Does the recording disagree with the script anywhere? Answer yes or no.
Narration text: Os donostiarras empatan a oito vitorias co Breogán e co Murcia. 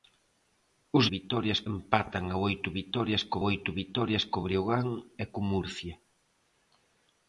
yes